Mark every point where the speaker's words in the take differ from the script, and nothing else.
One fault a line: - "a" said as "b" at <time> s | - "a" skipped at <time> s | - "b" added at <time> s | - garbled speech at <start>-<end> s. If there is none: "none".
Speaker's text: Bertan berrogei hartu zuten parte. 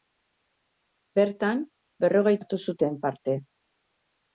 none